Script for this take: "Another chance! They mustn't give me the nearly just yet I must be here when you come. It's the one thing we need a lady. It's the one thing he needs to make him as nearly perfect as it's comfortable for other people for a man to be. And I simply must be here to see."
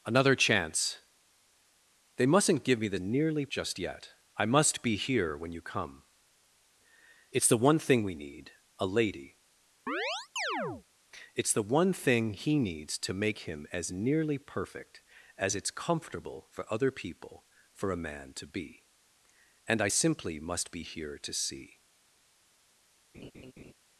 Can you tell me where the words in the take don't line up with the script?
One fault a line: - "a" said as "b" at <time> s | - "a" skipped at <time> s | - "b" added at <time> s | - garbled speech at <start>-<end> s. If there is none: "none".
none